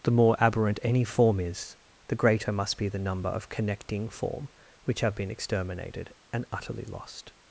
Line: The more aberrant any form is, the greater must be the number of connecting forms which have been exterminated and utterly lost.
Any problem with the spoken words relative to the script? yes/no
yes